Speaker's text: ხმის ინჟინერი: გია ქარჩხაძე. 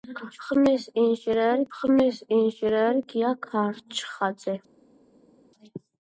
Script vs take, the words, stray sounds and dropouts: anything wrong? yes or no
yes